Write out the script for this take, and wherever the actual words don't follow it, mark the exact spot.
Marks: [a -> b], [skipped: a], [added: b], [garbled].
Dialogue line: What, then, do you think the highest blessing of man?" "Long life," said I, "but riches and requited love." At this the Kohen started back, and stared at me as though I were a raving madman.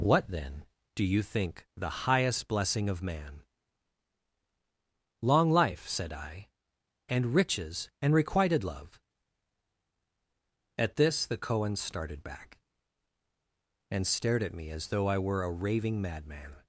What, then, do you think the highest blessing of man?" "Long life," said I, ["but -> and] riches and requited love." At this the Kohen started back, and stared at me as though I were a raving madman.